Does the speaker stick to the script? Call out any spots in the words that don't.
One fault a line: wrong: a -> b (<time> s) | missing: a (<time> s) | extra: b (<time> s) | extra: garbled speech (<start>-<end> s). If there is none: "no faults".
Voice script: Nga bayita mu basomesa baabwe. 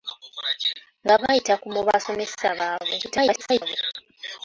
extra: garbled speech (3.0-3.8 s)